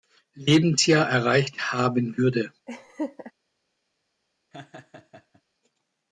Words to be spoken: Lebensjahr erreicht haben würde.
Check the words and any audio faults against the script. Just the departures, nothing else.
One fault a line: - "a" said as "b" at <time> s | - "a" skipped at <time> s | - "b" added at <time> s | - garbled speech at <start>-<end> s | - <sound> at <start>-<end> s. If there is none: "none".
- laugh at 2.7-3.3 s
- laugh at 4.5-5.4 s